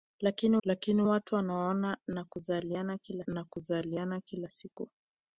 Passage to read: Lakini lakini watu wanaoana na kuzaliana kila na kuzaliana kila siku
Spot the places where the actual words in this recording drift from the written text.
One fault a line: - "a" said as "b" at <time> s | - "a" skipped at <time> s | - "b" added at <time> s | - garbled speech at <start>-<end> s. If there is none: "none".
none